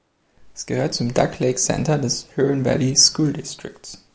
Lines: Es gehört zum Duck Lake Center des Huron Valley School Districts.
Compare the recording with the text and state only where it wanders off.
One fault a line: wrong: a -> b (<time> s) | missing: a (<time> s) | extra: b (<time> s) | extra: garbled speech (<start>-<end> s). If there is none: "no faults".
no faults